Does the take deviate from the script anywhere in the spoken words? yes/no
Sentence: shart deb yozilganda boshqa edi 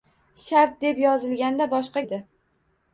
no